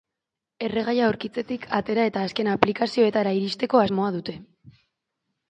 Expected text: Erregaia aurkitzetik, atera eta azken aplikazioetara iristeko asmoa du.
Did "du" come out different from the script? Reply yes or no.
yes